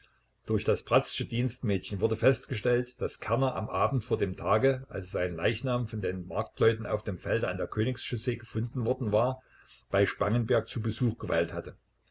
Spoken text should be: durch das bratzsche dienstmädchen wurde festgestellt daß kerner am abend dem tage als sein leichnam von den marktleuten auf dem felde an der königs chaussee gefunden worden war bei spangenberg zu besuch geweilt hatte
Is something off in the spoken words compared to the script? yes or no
yes